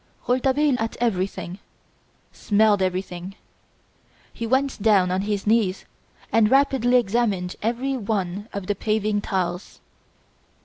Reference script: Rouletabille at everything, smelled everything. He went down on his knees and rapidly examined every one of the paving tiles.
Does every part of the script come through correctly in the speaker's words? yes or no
yes